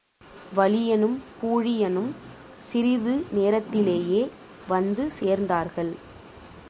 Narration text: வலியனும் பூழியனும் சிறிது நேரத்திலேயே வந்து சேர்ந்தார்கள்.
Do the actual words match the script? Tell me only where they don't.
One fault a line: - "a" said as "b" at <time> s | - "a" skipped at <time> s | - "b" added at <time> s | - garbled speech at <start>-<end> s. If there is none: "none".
none